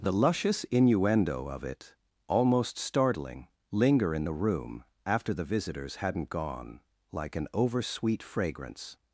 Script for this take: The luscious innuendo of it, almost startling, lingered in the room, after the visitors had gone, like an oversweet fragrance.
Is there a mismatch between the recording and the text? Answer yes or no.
yes